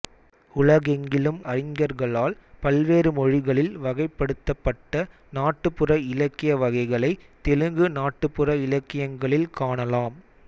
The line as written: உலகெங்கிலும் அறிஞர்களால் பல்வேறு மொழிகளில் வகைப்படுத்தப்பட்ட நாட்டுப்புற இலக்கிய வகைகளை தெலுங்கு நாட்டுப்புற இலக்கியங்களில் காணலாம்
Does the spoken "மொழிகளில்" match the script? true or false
true